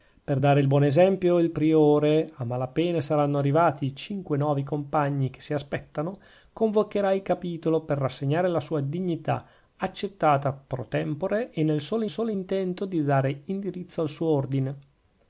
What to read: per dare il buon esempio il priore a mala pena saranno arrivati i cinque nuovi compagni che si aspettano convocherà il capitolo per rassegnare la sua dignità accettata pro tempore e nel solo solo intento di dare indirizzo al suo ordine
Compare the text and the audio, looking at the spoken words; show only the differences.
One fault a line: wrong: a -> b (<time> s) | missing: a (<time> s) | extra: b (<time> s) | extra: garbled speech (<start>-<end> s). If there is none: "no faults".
no faults